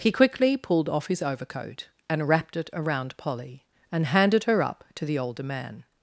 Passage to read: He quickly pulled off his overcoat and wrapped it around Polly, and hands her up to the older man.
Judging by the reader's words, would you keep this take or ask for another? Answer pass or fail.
fail